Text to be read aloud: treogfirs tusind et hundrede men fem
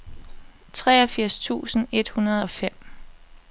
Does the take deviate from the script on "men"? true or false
true